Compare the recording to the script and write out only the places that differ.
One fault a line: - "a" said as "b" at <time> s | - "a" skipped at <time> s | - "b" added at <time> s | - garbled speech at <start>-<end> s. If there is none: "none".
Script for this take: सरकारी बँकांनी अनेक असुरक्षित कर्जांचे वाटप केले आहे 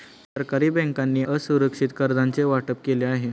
- "अनेक" skipped at 1.2 s